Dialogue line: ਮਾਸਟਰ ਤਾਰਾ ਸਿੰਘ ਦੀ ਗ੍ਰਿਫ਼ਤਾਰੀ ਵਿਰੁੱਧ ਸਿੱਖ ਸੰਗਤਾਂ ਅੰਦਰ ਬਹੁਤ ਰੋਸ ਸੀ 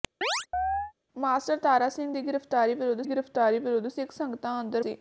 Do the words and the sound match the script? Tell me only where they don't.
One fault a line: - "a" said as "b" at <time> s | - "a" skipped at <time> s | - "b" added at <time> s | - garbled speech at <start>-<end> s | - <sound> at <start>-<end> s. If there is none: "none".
- chirp at 0.2-0.9 s
- "ਗ੍ਰਿਫ਼ਤਾਰੀ ਵਿਰੁੱਧ" added at 3.0 s
- "ਬਹੁਤ ਰੋਸ" skipped at 4.8 s